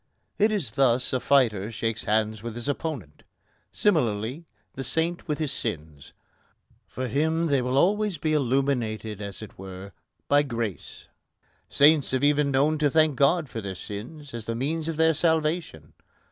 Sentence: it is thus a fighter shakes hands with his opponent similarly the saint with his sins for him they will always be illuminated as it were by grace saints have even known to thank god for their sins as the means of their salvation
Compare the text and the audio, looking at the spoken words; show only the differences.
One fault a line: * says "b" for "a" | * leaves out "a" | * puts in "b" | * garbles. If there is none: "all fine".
all fine